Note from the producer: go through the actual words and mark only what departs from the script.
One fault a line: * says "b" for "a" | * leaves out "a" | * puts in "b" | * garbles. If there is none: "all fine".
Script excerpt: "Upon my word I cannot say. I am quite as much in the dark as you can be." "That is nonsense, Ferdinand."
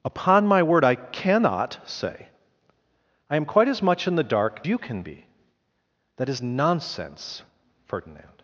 * leaves out "as"